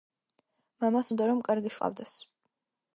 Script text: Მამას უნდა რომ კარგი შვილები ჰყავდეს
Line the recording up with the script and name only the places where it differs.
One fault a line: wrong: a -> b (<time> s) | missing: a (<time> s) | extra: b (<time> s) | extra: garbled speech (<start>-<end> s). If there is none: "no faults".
missing: შვილები (1.7 s)